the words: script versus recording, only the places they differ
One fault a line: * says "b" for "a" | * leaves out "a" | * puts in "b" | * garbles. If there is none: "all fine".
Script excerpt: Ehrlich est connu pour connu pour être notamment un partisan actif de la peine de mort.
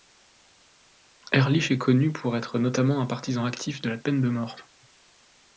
* leaves out "connu pour"